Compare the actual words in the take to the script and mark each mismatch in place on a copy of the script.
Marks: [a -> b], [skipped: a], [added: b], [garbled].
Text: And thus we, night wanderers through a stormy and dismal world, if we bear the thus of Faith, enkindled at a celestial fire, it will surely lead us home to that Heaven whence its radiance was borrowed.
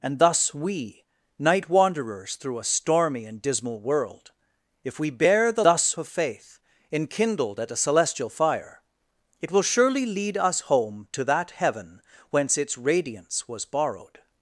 And thus we, night wanderers through a stormy and dismal world, if we bear the thus of Faith, enkindled at a celestial fire, it will surely lead us home to that Heaven whence its radiance was borrowed.